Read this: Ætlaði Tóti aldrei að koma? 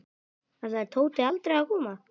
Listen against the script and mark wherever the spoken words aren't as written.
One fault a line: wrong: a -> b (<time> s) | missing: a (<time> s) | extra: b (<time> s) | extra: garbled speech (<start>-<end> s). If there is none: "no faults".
no faults